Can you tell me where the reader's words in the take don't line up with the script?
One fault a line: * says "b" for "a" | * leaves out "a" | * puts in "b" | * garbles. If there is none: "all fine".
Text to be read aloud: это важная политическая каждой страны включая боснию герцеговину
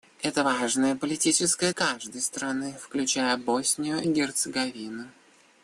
all fine